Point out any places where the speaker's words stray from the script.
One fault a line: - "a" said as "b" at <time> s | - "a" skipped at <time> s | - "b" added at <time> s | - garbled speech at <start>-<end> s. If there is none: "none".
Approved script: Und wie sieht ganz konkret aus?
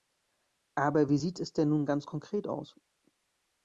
- "Und" said as "Aber" at 0.7 s
- "es denn nun" added at 1.4 s